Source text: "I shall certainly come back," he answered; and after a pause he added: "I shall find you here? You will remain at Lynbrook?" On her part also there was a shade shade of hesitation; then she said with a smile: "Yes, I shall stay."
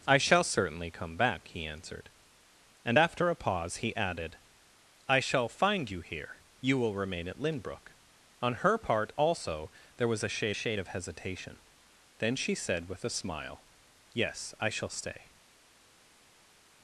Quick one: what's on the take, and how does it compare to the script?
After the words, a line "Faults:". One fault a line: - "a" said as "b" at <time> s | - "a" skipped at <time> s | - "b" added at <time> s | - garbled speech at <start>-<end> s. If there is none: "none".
"I shall certainly come back," he answered; and after a pause he added: "I shall find you here? You will remain at Lynbrook?" On her part also there was a shade shade of hesitation; then she said with a smile: "Yes, I shall stay."
Faults:
none